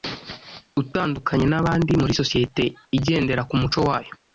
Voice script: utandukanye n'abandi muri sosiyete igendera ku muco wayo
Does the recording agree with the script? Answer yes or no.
yes